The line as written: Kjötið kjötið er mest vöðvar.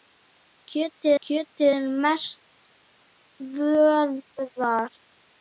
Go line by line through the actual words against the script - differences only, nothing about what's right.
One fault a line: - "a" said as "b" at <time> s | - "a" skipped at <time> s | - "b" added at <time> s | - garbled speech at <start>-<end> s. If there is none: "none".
none